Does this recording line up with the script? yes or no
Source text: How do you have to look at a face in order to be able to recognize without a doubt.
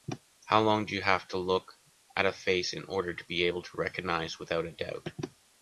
no